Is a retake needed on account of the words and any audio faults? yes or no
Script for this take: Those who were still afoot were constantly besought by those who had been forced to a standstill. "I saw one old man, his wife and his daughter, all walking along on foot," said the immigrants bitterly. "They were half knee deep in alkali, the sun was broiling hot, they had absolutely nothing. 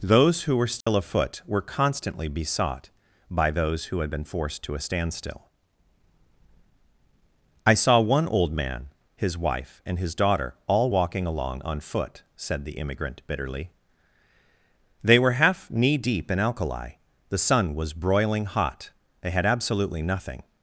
yes